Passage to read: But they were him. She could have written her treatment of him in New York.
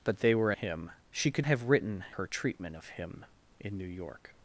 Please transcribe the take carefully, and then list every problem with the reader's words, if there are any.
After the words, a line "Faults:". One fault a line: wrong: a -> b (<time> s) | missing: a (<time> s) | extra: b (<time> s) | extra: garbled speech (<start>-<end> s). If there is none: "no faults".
But they were him. She could have written her treatment of him in New York.
Faults:
no faults